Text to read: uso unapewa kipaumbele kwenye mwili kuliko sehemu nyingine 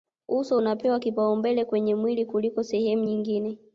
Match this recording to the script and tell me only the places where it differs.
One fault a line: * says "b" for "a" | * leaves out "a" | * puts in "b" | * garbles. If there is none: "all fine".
all fine